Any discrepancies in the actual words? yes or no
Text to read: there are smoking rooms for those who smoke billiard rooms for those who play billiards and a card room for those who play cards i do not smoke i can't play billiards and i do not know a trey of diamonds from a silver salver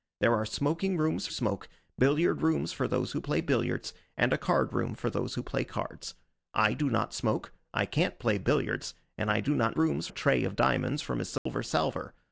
yes